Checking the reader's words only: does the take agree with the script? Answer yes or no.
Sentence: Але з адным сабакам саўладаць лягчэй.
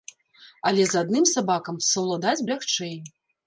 yes